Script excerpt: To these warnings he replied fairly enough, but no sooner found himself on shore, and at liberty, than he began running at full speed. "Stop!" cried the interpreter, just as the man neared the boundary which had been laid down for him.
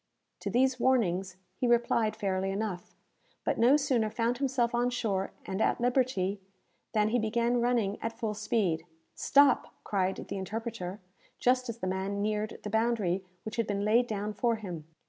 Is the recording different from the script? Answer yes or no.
no